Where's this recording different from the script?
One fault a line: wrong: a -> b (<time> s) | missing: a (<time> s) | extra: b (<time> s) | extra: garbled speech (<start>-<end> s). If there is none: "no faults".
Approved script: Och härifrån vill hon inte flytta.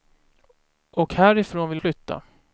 missing: hon inte (1.8 s)